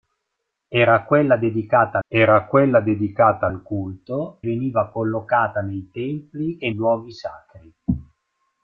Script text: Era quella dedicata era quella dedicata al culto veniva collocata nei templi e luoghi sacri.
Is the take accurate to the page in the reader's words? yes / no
yes